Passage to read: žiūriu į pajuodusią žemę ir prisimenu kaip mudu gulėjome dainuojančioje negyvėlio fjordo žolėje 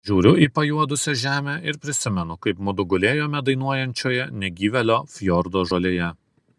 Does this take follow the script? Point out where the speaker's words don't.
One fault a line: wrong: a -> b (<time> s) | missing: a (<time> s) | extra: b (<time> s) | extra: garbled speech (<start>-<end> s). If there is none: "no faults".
no faults